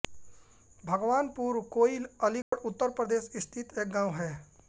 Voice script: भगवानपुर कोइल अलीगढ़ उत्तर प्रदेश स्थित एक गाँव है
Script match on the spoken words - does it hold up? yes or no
yes